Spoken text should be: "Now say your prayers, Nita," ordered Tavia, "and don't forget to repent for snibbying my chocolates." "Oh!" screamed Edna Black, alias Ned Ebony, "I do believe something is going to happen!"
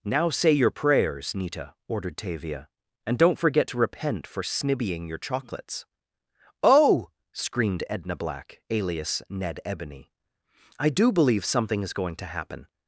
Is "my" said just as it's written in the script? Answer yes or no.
no